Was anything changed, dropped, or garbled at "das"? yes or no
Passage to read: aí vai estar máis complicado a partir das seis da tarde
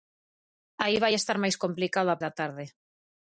yes